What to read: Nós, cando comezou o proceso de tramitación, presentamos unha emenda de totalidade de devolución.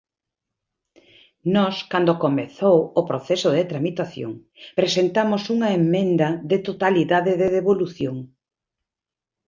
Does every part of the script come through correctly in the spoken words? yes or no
yes